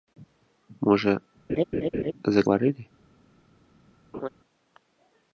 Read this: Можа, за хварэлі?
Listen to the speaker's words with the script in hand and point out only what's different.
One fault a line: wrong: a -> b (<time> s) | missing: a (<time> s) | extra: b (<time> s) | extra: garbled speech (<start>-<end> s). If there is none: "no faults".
no faults